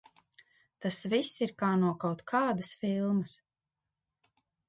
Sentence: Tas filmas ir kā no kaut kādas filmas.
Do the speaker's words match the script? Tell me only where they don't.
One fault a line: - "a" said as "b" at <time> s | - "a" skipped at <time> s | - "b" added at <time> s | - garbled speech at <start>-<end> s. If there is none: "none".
- "filmas" said as "viss" at 1.1 s